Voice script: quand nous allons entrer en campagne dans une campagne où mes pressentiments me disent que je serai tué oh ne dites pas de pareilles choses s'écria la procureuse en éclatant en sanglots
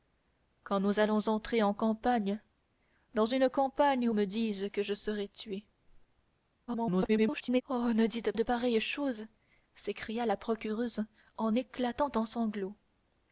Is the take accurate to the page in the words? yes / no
no